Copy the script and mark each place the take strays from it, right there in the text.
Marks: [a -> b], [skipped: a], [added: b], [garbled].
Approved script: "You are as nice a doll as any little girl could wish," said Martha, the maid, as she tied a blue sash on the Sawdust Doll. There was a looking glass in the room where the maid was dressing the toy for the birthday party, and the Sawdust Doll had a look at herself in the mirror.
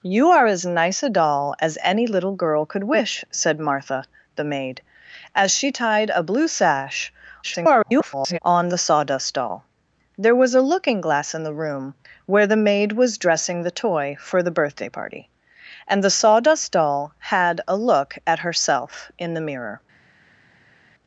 "You are as nice a doll as any little girl could wish," said Martha, the maid, as she tied a blue sash [garbled] on the Sawdust Doll. There was a looking glass in the room where the maid was dressing the toy for the birthday party, and the Sawdust Doll had a look at herself in the mirror.